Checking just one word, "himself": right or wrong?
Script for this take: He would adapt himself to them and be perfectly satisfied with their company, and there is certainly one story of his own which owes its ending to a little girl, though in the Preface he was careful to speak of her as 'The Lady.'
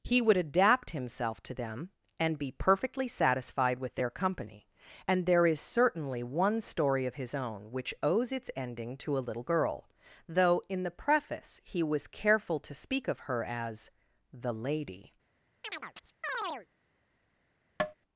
right